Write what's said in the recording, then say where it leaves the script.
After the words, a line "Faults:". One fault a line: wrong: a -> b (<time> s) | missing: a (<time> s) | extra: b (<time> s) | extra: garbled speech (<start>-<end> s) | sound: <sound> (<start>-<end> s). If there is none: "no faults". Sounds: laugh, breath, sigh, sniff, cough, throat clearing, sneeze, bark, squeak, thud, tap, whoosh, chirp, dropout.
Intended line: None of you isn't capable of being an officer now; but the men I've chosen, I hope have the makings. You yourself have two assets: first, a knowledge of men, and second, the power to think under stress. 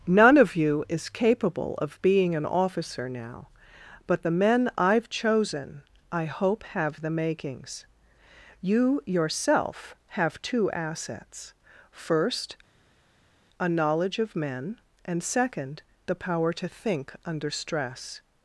None of you is capable of being an officer now; but the men I've chosen, I hope have the makings. You yourself have two assets: first, a knowledge of men, and second, the power to think under stress.
Faults:
wrong: isn't -> is (0.9 s)